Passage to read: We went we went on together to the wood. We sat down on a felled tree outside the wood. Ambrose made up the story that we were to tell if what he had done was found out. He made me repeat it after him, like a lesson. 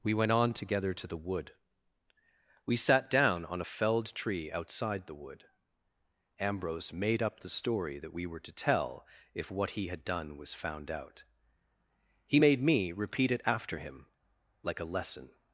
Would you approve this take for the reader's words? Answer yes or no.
no